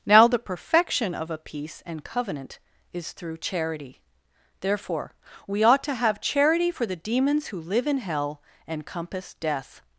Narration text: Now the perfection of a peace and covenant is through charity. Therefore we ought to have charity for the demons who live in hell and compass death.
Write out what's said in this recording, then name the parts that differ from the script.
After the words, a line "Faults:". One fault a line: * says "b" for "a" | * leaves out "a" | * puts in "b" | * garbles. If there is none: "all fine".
Now the perfection of a peace and covenant is through charity. Therefore we ought to have charity for the demons who live in hell and compass death.
Faults:
all fine